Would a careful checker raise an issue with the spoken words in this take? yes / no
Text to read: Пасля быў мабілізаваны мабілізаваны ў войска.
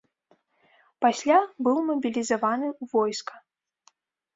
yes